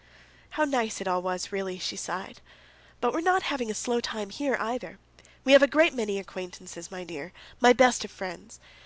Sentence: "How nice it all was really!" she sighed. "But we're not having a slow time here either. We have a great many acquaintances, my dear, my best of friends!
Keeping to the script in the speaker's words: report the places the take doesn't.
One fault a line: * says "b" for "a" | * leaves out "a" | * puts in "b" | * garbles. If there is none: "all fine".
all fine